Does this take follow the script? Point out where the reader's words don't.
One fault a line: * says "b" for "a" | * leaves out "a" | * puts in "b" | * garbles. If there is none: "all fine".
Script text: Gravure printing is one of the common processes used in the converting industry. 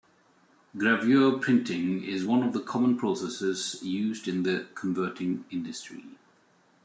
all fine